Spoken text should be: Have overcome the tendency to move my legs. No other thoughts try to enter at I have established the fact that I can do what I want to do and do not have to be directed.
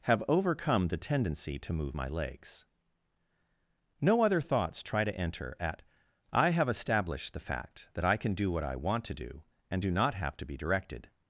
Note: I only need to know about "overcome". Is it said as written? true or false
true